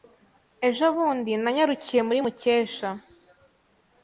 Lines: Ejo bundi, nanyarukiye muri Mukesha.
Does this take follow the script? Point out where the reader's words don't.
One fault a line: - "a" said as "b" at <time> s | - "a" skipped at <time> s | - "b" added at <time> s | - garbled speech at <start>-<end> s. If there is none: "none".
none